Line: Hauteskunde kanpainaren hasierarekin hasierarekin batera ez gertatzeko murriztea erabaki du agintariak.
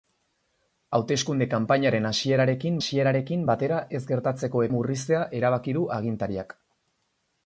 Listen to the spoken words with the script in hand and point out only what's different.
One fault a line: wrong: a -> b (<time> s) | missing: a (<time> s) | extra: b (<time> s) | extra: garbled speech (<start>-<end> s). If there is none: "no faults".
no faults